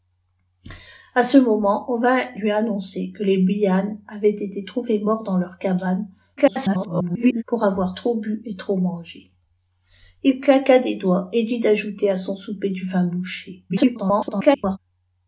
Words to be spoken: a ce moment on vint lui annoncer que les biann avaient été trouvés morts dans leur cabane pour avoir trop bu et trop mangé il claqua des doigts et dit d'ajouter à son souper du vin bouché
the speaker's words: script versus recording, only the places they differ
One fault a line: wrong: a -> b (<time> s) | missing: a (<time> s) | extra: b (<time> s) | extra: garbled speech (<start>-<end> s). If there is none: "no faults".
extra: garbled speech (6.4-7.4 s)
extra: garbled speech (13.7-14.8 s)